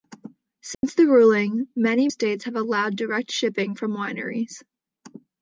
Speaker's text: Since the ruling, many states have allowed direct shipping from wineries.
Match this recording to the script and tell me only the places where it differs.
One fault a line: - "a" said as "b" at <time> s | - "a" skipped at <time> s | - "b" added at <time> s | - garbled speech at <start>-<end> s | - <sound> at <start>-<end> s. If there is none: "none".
- dropout at 0.7-0.8 s